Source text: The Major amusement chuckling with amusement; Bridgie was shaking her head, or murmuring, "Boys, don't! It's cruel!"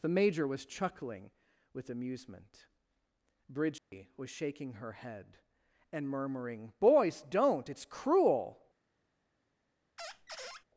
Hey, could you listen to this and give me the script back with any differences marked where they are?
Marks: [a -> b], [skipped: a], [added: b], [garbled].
The Major [amusement -> was] chuckling with amusement; Bridgie was shaking her head, [or -> and] murmuring, "Boys, don't! It's cruel!"